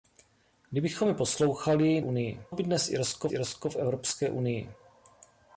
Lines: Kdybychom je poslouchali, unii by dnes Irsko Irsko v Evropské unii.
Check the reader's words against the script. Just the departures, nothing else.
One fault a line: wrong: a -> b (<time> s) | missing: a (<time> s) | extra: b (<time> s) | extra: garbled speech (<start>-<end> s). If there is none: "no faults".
no faults